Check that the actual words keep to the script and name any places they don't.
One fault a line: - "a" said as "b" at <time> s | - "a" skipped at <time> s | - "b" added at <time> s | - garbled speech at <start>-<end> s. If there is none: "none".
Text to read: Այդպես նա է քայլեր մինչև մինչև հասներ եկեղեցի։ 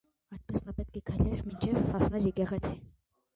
- "պետք" added at 0.8 s
- "մինչև" skipped at 1.9 s